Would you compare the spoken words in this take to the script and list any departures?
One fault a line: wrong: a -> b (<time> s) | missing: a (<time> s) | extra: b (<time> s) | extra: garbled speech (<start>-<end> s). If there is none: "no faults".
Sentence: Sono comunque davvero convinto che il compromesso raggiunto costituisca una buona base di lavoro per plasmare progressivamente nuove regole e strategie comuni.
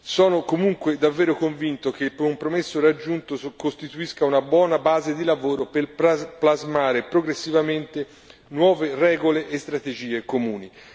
no faults